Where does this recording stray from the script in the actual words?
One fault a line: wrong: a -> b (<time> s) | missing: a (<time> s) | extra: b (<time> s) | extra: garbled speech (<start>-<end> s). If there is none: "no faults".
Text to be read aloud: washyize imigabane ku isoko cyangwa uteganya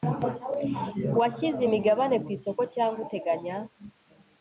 no faults